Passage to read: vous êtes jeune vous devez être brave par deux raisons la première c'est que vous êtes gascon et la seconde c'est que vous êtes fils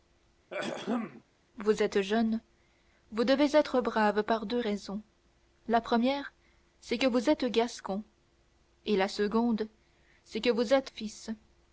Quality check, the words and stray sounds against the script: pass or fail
fail